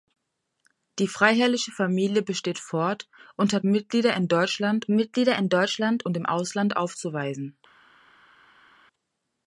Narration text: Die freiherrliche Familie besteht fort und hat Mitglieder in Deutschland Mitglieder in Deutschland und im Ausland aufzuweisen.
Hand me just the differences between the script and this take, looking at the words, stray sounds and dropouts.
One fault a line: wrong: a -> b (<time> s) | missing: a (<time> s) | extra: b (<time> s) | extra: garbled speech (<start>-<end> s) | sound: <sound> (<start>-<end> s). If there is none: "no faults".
no faults